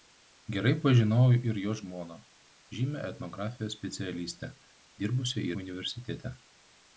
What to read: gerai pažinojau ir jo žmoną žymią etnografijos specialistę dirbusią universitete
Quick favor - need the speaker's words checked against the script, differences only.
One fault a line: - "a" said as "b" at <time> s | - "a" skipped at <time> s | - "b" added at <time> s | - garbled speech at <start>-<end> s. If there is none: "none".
none